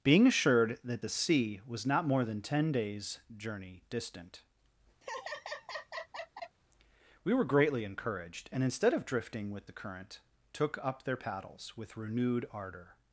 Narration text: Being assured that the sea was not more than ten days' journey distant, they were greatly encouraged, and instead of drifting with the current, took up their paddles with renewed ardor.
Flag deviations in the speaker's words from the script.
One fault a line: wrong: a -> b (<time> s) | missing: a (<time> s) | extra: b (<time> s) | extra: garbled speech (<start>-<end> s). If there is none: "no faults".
wrong: they -> we (7.2 s)